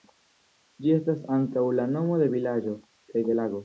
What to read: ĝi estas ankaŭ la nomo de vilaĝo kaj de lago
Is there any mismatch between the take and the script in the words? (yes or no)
no